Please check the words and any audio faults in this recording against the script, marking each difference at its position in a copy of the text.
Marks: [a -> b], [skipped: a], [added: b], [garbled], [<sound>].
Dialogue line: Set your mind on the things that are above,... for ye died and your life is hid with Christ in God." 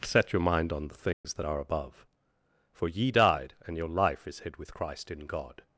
Set your mind on the things [dropout] that are above,... for ye died and your life is hid with Christ in God."